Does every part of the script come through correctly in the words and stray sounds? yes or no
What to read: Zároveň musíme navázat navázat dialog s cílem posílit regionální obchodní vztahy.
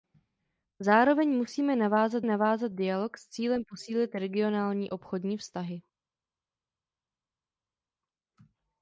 yes